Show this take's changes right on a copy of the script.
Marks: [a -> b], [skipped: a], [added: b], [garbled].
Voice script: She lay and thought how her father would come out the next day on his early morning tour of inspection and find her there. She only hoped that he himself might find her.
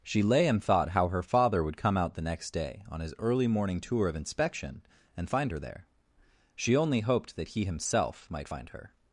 She lay and thought how her father would come out the next day on his early morning tour of inspection and find her there. She only hoped that he himself might find her.